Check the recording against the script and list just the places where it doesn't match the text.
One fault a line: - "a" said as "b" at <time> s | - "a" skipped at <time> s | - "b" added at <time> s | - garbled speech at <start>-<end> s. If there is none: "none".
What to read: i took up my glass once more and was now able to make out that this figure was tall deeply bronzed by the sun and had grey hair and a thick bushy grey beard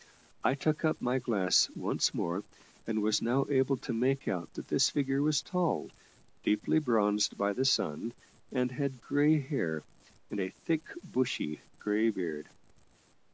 none